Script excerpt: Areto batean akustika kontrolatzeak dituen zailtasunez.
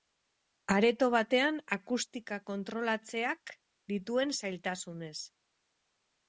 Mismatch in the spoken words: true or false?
false